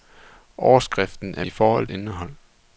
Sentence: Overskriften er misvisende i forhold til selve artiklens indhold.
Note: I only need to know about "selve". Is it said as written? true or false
false